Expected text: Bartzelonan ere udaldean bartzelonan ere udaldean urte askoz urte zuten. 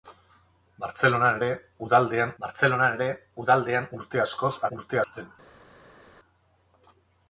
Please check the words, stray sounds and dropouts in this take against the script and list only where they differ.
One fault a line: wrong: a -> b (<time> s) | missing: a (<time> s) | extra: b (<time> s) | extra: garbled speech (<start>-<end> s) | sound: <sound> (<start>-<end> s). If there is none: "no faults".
no faults